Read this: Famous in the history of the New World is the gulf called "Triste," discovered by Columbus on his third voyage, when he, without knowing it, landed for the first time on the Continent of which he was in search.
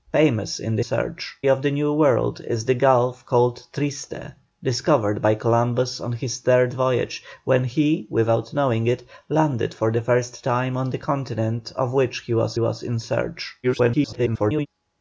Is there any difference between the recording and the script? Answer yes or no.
yes